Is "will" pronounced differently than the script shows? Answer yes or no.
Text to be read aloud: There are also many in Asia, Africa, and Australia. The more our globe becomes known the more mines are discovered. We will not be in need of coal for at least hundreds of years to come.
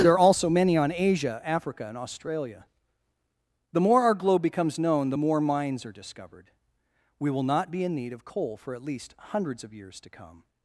no